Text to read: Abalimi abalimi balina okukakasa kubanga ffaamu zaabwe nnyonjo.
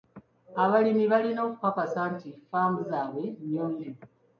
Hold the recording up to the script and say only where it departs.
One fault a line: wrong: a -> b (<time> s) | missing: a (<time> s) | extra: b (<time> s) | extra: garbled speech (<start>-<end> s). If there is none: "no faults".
missing: abalimi (1.1 s)
wrong: kubanga -> nti (2.1 s)